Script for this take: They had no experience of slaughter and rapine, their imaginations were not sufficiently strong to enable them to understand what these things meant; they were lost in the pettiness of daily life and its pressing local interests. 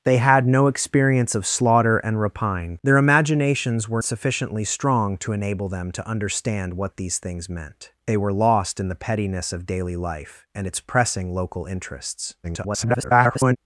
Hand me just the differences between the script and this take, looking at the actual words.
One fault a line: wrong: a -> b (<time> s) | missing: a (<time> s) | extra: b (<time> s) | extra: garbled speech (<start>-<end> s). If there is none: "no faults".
missing: not (4.0 s)
extra: garbled speech (12.4-13.6 s)